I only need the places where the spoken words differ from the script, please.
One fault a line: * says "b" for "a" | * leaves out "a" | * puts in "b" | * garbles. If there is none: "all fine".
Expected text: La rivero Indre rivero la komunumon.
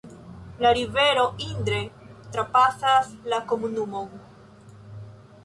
* says "trapasas" for "rivero"